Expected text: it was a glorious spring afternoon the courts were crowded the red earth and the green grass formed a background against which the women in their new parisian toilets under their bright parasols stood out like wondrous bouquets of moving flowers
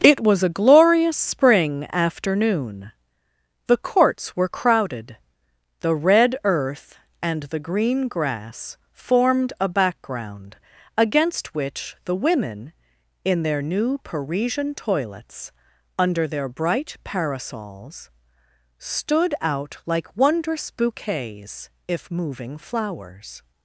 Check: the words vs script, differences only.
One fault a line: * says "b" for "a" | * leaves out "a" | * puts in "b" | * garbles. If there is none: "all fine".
* says "if" for "of"